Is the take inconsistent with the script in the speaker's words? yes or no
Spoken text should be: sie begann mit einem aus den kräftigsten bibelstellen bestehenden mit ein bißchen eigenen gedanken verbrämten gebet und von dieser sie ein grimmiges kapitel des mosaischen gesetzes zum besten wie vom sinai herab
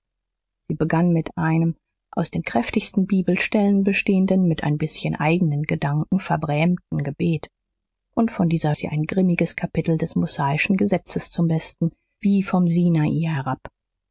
no